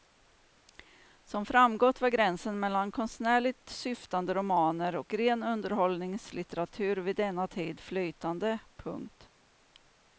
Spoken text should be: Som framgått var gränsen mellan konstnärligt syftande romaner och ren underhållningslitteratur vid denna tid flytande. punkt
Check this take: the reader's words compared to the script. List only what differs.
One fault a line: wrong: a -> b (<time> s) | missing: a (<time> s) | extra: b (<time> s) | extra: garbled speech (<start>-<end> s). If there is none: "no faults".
no faults